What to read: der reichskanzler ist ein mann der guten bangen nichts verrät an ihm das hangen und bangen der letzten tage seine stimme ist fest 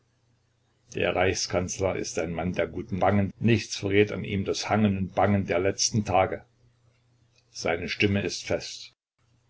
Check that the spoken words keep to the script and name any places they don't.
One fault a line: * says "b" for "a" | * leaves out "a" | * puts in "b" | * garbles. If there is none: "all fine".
all fine